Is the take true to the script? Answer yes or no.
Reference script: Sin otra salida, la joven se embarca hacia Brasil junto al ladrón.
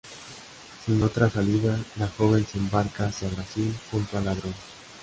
yes